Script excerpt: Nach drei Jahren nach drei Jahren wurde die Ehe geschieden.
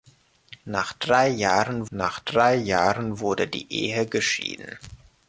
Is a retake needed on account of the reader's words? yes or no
no